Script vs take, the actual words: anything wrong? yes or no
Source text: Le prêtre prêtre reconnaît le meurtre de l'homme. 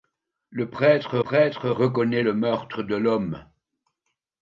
no